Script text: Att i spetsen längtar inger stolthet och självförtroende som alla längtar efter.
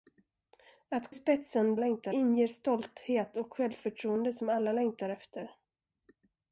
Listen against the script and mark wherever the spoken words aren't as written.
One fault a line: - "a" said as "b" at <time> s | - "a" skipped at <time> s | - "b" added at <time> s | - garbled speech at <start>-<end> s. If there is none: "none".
none